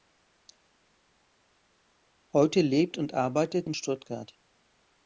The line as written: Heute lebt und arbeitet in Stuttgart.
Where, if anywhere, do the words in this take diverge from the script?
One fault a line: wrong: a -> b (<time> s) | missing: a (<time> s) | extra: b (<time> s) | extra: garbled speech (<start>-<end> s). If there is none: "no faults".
no faults